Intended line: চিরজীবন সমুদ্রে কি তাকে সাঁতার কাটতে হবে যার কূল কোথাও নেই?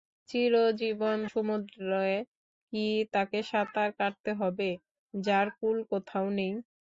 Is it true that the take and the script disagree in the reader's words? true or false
false